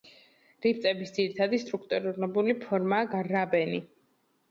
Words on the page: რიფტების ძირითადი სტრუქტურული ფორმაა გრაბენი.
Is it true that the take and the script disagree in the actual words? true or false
false